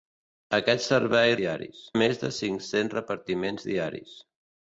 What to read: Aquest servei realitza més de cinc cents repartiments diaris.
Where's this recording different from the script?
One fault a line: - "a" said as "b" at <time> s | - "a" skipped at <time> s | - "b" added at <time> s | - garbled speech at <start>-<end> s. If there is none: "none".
- "realitza" said as "diaris" at 1.4 s